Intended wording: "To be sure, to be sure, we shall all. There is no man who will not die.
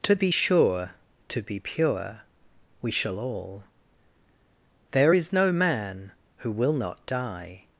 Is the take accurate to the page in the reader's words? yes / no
no